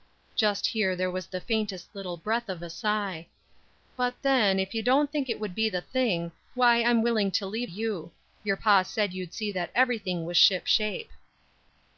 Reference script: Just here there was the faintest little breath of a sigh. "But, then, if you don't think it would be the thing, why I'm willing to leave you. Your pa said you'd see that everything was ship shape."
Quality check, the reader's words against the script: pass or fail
pass